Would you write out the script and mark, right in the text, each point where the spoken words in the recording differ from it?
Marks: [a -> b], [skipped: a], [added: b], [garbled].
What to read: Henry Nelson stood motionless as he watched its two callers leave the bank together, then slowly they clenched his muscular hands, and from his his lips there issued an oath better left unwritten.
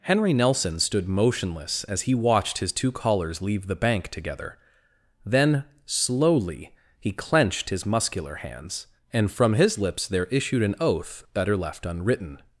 Henry Nelson stood motionless as he watched [its -> his] two callers leave the bank together, then slowly [they -> he] clenched his muscular hands, and from his [skipped: his] lips there issued an oath better left unwritten.